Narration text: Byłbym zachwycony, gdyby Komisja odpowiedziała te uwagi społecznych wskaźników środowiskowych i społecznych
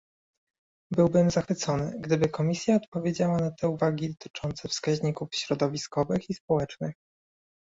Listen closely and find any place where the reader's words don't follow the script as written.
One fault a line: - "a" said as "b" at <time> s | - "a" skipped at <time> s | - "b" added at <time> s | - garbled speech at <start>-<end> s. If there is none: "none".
- "na" added at 3.4 s
- "społecznych" said as "dotyczące" at 4.1 s